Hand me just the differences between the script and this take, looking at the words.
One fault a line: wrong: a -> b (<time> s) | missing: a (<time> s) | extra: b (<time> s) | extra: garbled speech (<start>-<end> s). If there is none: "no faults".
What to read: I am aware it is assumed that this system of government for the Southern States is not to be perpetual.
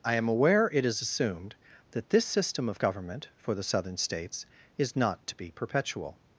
no faults